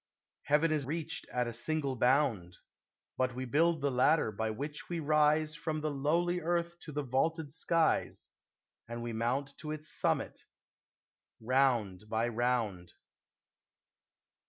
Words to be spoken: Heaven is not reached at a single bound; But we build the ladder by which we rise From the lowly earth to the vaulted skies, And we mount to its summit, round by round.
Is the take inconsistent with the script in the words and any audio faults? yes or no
yes